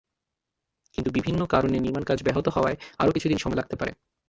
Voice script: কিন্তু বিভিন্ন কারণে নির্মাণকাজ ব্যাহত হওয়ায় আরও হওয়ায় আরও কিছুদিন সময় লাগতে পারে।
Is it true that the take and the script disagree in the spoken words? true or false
true